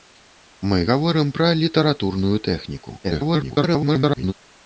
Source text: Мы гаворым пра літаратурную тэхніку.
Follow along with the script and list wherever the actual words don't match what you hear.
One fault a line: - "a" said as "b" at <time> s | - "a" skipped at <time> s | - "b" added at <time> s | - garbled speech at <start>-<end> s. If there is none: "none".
- garbled speech at 3.0-4.3 s